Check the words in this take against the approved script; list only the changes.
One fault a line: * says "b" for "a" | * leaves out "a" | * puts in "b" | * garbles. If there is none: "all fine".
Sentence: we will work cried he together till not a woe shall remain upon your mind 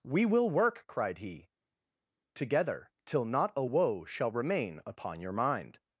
all fine